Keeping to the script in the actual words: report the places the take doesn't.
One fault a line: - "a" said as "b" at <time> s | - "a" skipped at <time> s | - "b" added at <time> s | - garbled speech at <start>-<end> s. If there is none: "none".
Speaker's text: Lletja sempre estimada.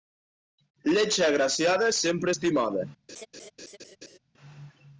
- "agraciada" added at 1.3 s